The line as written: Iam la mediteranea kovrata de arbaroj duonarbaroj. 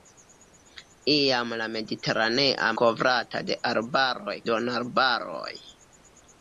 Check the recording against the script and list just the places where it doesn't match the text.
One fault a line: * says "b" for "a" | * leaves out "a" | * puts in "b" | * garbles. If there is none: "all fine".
all fine